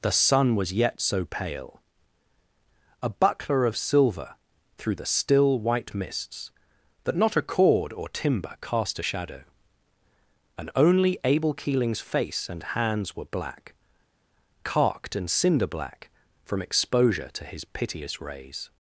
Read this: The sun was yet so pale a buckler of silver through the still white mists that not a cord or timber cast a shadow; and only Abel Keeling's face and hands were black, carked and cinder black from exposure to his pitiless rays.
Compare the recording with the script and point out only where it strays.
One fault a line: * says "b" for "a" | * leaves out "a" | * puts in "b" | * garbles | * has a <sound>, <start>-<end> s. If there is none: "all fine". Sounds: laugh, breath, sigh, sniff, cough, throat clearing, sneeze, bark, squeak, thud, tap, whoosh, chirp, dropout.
* says "piteous" for "pitiless"